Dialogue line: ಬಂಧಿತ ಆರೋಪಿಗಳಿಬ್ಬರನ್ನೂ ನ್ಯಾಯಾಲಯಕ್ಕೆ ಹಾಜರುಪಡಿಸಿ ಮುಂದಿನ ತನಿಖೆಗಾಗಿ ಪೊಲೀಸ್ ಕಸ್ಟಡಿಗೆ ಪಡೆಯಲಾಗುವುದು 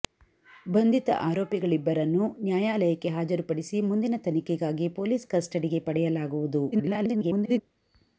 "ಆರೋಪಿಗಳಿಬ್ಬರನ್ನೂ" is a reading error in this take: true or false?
false